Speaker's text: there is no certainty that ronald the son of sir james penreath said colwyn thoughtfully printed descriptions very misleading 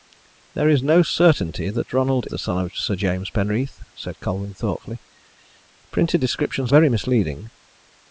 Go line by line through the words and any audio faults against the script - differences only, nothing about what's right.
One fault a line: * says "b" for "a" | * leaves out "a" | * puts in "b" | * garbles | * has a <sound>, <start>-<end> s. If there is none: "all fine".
all fine